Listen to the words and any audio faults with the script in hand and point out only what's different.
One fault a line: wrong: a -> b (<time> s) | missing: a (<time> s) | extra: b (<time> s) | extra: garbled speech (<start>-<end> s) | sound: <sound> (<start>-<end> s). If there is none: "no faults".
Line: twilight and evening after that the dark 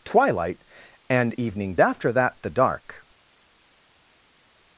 no faults